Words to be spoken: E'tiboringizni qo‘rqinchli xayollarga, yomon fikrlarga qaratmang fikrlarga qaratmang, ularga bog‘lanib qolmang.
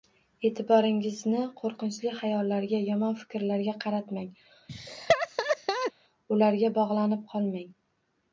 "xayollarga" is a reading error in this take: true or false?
false